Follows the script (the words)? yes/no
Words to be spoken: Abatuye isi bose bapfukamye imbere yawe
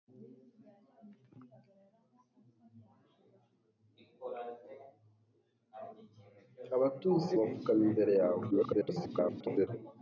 no